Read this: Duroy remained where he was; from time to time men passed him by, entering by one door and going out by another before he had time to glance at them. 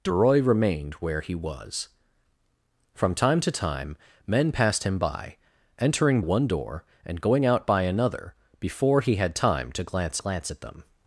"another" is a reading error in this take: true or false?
false